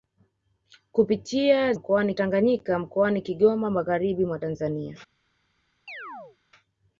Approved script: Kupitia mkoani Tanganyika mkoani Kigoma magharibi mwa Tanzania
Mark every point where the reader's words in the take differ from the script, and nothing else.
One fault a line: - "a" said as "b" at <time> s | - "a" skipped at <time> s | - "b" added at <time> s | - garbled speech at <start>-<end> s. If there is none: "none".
none